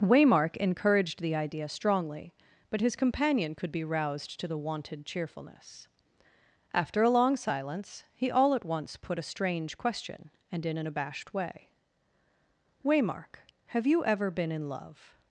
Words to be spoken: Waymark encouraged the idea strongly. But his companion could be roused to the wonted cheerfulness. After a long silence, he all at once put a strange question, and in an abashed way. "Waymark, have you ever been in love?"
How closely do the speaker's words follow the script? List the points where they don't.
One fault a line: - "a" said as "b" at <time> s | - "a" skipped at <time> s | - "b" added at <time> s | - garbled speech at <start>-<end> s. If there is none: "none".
none